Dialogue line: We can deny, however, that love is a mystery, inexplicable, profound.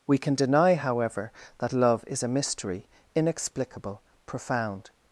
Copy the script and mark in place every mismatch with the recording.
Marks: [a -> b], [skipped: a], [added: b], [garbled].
We can deny, however, that love is a mystery, inexplicable, profound.